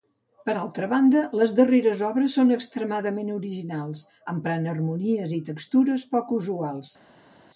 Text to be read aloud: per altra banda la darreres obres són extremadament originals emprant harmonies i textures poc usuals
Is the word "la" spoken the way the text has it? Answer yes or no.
no